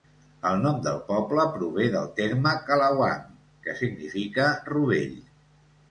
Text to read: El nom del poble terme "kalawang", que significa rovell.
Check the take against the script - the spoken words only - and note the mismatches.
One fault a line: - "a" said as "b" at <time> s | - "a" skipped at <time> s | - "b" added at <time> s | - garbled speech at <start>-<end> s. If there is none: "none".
- "prové del" added at 1.6 s